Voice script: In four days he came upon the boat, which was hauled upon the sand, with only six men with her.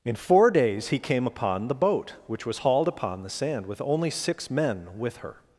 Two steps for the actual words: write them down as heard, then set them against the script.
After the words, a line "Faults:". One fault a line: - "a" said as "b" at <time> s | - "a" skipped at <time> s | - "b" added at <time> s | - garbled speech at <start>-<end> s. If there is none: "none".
In four days he came upon the boat, which was hauled upon the sand, with only six men with her.
Faults:
none